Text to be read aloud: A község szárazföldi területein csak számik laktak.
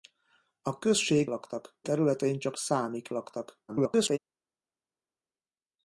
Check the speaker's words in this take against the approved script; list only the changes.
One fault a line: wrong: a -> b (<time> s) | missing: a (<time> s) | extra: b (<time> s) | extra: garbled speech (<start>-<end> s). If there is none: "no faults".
wrong: szárazföldi -> laktak (1.3 s)
extra: garbled speech (3.7-4.2 s)